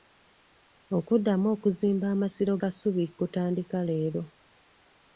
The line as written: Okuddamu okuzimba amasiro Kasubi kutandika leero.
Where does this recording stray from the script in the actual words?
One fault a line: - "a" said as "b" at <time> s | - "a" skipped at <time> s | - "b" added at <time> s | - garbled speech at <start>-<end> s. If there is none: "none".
none